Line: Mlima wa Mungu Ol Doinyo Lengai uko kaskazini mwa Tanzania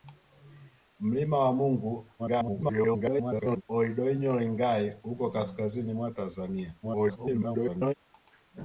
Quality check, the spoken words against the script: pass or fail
fail